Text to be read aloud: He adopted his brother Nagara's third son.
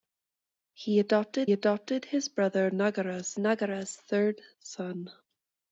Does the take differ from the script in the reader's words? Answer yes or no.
yes